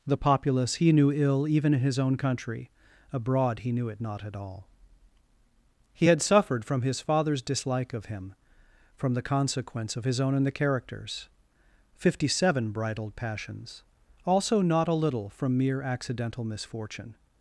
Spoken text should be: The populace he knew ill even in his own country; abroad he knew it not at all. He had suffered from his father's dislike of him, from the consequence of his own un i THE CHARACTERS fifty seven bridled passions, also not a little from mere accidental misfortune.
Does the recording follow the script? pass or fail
fail